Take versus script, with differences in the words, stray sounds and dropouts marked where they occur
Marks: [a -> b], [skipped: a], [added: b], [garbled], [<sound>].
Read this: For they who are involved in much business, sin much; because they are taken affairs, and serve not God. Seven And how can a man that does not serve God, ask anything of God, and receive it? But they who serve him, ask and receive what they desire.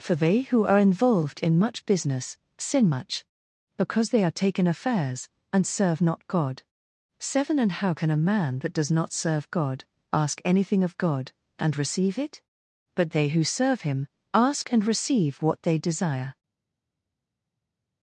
For they who are involved in much business, sin much; because they are taken affairs, and serve not God. Seven And how can a man that does not serve God, ask anything of God, and receive it? But they who serve him, ask and receive what they desire.